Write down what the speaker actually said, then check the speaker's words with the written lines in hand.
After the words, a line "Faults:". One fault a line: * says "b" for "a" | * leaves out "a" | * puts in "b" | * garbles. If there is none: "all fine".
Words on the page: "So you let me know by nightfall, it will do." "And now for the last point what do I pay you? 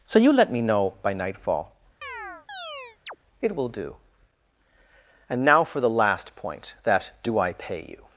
"So you let me know by nightfall, it will do." "And now for the last point that do I pay you?
Faults:
* says "that" for "what"